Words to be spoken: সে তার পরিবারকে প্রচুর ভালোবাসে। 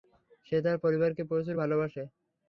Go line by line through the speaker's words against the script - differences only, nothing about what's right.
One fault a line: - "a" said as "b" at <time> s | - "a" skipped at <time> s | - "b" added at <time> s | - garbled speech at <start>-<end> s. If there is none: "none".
none